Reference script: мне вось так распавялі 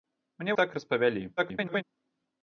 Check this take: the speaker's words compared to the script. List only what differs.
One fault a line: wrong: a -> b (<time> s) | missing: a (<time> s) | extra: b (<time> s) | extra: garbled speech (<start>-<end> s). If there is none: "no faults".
missing: вось (0.5 s)
extra: garbled speech (1.4-1.8 s)